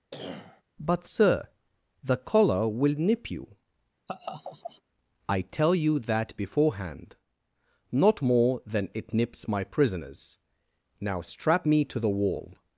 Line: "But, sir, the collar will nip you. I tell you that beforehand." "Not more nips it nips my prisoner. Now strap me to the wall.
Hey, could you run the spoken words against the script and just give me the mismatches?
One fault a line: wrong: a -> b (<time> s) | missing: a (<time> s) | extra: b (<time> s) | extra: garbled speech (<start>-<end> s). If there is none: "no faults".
wrong: nips -> than (8.7 s)
wrong: prisoner -> prisoners (9.6 s)